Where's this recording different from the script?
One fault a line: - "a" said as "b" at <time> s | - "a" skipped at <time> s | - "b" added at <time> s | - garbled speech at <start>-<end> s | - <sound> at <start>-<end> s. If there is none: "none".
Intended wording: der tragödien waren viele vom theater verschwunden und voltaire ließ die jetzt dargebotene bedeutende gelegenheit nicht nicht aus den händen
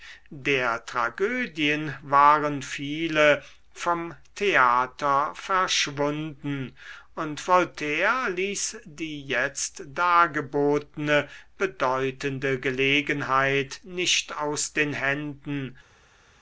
- "nicht" skipped at 14.4 s